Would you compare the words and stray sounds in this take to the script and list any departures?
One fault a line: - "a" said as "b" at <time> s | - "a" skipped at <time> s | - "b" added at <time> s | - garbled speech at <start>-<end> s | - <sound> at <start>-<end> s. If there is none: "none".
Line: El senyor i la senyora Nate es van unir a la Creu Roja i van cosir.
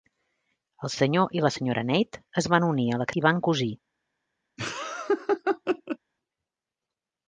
- "Creu Roja" skipped at 3.1 s
- laugh at 4.6-6.0 s